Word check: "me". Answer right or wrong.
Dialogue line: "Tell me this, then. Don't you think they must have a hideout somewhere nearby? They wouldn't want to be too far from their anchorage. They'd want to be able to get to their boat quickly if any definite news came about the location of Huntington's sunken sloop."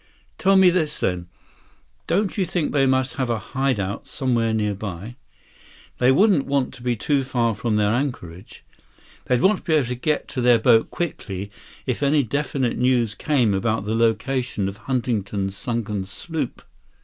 right